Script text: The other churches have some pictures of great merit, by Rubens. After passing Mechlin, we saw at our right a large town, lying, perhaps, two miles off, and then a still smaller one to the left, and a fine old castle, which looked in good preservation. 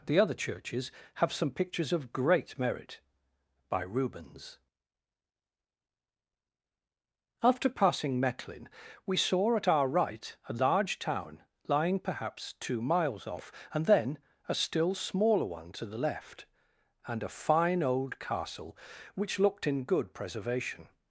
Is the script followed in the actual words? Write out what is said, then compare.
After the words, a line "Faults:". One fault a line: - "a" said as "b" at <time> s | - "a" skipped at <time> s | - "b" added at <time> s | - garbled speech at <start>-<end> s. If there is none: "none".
The other churches have some pictures of great merit, by Rubens. After passing Mechlin, we saw at our right a large town, lying, perhaps, two miles off, and then a still smaller one to the left, and a fine old castle, which looked in good preservation.
Faults:
none